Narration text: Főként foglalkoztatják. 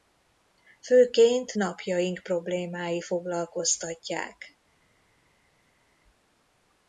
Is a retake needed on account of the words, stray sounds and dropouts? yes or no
yes